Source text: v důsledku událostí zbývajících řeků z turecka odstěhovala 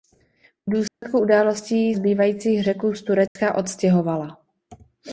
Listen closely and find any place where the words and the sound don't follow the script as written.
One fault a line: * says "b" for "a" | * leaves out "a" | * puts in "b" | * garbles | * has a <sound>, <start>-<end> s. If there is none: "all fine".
* has a dropout, 0.9-1.0 s
* has a dropout, 3.3-3.4 s